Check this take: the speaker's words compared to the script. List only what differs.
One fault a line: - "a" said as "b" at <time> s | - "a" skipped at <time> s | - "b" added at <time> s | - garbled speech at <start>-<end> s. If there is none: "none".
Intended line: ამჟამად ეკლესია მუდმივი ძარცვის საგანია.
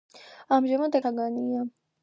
- "ეკლესია მუდმივი ძარცვის" skipped at 1.0 s